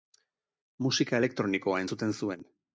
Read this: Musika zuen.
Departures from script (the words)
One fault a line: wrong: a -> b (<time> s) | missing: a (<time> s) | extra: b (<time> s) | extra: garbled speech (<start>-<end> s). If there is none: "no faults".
extra: elektronikoa entzuten (1.2 s)